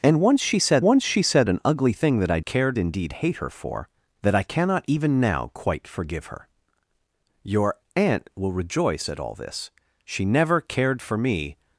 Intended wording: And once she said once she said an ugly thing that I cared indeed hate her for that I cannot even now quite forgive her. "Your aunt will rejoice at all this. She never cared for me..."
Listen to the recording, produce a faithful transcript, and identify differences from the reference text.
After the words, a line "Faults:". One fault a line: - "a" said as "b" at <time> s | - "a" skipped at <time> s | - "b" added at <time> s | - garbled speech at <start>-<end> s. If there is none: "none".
And once she said once she said an ugly thing that I cared indeed hate her for that I cannot even now quite forgive her. "Your aunt will rejoice at all this. She never cared for me..."
Faults:
none